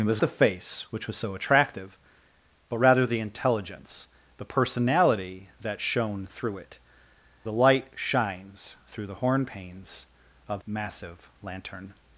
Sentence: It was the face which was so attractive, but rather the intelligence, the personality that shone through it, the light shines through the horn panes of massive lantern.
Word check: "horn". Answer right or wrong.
right